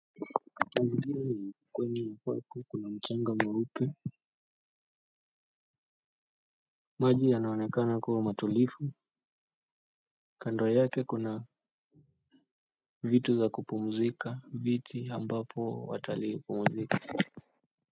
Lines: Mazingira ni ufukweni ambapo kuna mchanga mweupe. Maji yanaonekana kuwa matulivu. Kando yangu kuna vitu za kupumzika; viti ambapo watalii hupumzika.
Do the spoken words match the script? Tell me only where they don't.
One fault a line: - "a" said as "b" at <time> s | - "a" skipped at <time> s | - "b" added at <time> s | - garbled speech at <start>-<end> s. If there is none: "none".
- "yangu" said as "yake" at 10.7 s